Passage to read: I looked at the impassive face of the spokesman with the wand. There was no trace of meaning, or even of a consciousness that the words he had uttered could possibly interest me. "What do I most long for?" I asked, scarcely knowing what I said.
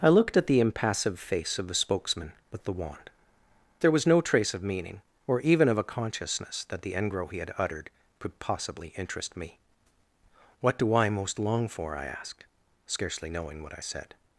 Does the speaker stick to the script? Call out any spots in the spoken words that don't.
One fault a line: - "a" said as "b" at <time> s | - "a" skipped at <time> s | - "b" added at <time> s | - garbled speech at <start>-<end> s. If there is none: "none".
- "words" said as "engro" at 7.0 s